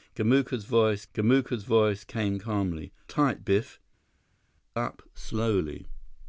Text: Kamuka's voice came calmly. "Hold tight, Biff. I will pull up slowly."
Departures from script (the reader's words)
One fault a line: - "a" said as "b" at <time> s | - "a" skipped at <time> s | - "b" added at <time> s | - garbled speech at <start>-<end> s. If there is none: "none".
- "kamuka's voice" added at 1.1 s
- "Hold" skipped at 2.9 s
- "I will pull" skipped at 3.8 s